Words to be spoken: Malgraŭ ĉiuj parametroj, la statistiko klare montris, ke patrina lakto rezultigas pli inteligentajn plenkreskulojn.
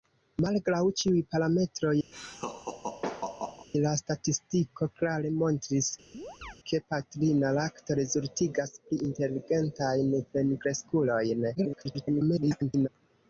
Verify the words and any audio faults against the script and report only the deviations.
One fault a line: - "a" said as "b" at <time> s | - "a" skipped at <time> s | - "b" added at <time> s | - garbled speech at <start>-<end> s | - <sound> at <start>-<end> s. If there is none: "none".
- laugh at 2.1-3.7 s
- chirp at 6.1-6.6 s
- garbled speech at 11.5-12.9 s